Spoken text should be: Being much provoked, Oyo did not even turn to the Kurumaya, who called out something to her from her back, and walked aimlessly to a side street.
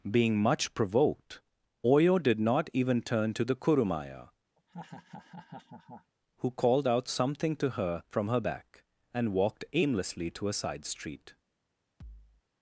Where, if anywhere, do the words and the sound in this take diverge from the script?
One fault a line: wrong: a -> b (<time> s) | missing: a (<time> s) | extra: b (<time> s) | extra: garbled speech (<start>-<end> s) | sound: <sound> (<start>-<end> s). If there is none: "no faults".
sound: laugh (4.6-6.1 s)
sound: thud (12.0-12.4 s)